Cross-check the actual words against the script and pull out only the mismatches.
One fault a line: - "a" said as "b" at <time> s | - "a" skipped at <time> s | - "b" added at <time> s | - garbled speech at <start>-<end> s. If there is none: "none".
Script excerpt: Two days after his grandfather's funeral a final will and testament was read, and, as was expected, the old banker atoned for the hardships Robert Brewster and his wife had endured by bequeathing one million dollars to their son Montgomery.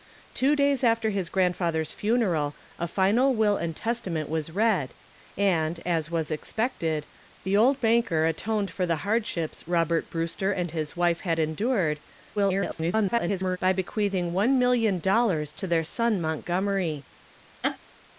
- garbled speech at 12.4-13.6 s